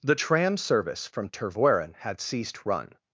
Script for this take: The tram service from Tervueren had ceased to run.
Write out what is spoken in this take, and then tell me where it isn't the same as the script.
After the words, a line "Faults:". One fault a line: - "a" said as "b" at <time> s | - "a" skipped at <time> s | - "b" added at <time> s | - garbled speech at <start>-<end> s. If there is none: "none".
The tram service from Tervueren had ceased run.
Faults:
- "to" skipped at 2.6 s